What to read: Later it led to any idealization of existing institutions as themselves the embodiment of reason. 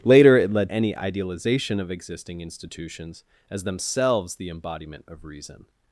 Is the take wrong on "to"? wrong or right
wrong